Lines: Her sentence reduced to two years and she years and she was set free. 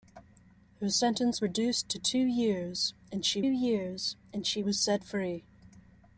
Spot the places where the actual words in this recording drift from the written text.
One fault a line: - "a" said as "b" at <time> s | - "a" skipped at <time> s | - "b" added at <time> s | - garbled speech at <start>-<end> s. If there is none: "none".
none